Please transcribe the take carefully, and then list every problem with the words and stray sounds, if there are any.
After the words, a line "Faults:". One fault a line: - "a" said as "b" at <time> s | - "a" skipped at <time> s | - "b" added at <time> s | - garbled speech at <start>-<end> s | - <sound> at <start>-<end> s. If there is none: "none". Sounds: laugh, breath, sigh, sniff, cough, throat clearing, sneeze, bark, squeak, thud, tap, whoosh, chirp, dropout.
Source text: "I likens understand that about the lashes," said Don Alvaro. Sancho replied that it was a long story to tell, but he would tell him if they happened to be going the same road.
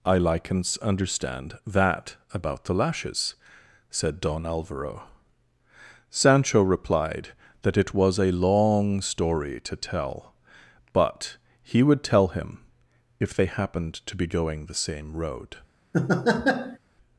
"I likens understand that about the lashes," said Don Alvaro. Sancho replied that it was a long story to tell, but he would tell him if they happened to be going the same road.
Faults:
- laugh at 15.9-16.8 s